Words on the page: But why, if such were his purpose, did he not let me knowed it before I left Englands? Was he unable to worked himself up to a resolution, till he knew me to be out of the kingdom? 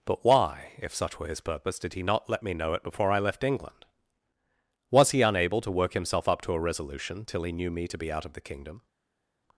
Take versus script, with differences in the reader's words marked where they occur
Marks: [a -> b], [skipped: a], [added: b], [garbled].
But why, if such were his purpose, did he not let me [knowed -> know] it before I left [Englands? -> England] Was he unable to [worked -> work] himself up to a resolution, till he knew me to be out of the kingdom?